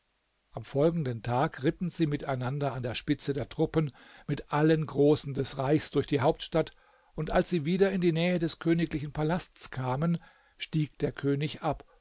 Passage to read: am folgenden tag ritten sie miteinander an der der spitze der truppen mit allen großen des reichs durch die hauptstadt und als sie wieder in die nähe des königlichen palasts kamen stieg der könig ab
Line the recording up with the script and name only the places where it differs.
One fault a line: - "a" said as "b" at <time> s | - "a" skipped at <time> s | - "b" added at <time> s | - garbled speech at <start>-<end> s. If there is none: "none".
- "der" skipped at 2.9 s